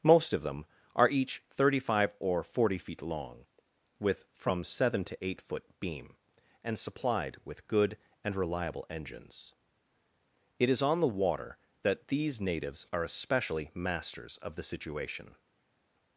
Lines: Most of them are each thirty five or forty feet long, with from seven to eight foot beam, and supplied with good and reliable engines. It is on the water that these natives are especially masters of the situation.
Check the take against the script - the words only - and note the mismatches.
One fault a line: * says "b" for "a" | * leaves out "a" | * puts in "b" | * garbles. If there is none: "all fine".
all fine